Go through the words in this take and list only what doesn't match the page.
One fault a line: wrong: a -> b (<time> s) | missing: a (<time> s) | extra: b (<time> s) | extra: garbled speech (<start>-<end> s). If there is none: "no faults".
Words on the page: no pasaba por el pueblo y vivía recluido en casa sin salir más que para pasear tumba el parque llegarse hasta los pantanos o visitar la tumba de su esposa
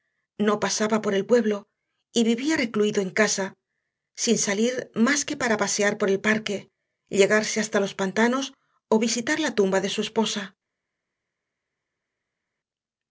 wrong: tumba -> por (6.0 s)